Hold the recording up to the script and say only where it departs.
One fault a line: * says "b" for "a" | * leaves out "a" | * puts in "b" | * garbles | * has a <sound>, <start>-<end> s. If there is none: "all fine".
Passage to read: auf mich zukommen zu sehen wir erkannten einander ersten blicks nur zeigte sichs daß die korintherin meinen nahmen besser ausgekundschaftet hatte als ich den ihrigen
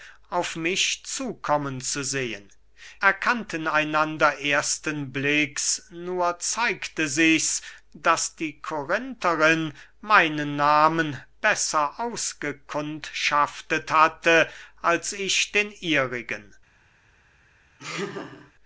* leaves out "wir"
* has a laugh, 17.8-18.5 s